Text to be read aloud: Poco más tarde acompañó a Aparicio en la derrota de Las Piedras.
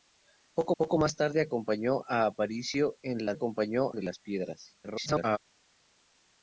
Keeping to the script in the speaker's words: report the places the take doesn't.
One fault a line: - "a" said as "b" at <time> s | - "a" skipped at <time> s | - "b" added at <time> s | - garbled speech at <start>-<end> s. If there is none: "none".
- "poco" added at 0.8 s
- "derrota" said as "acompañó" at 3.3 s
- garbled speech at 4.8-5.4 s